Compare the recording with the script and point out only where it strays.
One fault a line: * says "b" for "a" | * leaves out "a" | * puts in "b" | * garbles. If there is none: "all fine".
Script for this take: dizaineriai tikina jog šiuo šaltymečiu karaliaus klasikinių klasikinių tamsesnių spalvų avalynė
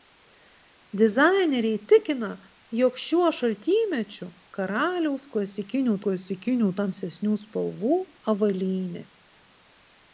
all fine